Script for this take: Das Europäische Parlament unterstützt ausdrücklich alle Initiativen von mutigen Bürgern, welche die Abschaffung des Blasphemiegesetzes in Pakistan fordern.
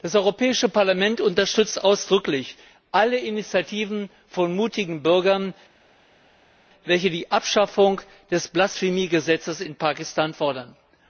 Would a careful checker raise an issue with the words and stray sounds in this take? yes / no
no